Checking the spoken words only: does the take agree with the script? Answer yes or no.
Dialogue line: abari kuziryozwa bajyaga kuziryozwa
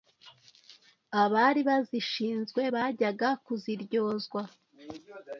no